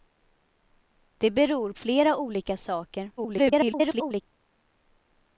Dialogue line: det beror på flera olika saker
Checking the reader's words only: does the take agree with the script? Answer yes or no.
no